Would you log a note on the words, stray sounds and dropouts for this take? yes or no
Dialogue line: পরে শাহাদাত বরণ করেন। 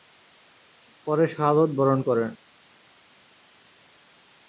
no